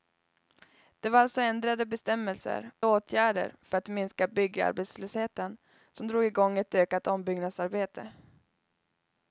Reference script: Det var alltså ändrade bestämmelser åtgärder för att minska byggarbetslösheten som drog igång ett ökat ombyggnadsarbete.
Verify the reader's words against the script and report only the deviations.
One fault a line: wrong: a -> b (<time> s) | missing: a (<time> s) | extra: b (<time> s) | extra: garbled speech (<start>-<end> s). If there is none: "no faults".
no faults